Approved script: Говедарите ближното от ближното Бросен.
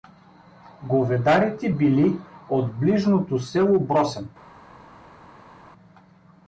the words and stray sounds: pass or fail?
fail